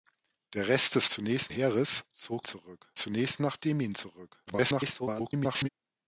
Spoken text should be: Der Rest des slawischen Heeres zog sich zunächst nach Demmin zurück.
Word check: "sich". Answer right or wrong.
wrong